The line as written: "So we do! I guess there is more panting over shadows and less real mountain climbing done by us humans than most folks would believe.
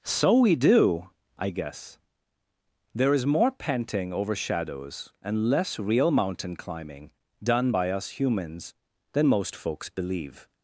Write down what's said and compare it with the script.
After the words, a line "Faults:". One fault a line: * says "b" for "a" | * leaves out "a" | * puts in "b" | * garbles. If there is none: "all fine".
"So we do! I guess there is more panting over shadows and less real mountain climbing done by us humans than most folks believe.
Faults:
* leaves out "would"